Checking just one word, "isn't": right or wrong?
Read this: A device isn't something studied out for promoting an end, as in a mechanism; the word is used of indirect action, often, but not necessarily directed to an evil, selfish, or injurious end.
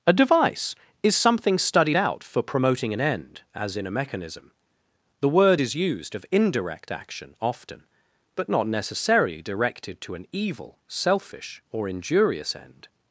wrong